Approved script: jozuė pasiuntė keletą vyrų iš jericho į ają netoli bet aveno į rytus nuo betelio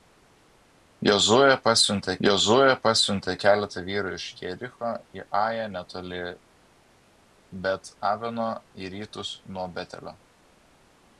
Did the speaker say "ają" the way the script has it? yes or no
yes